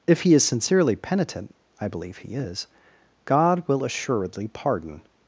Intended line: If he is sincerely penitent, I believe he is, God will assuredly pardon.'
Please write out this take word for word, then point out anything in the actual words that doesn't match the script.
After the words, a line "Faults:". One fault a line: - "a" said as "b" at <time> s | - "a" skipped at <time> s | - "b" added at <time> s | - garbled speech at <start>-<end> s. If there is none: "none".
If he is sincerely penitent, I believe he is, God will assuredly pardon.'
Faults:
none